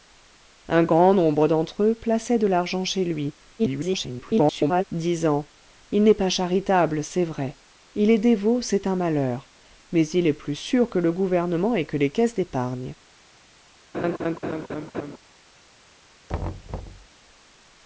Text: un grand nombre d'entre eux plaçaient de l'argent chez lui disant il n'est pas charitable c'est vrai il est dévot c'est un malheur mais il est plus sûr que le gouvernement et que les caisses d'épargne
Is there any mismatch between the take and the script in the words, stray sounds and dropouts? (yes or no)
yes